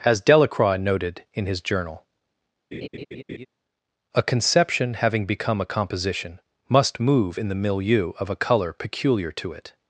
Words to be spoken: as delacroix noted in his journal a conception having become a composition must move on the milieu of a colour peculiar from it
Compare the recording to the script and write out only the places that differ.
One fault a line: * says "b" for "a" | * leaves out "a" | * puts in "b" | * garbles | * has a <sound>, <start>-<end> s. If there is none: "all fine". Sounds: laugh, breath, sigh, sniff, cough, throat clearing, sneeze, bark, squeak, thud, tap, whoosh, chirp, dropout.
* has a laugh, 2.7-3.5 s
* says "in" for "on"
* says "to" for "from"